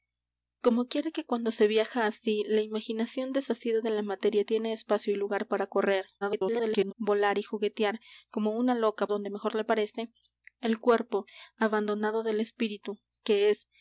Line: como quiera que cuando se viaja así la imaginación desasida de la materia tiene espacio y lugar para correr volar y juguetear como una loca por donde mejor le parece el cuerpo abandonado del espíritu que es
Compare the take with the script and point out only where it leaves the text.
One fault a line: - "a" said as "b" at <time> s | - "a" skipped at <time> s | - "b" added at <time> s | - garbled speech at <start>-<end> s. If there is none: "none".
- garbled speech at 6.2-6.9 s
- "por" skipped at 9.1 s